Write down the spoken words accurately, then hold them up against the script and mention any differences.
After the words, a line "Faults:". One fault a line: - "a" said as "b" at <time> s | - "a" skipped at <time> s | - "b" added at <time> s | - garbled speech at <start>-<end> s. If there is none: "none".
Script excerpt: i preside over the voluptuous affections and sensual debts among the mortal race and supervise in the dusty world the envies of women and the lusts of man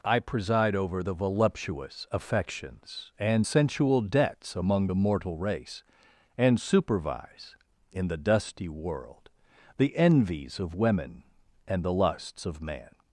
i preside over the voluptuous affections and sensual debts among the mortal race and supervise in the dusty world the envies of women and the lusts of man
Faults:
none